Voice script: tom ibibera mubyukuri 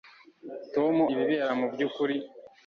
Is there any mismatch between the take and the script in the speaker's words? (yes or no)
no